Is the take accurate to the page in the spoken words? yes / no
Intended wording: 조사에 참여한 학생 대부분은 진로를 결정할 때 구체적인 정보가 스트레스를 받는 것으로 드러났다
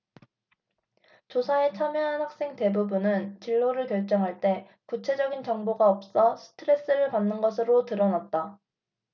no